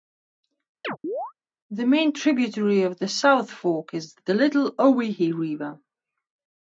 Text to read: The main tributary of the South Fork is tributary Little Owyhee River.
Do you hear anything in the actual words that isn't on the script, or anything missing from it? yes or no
yes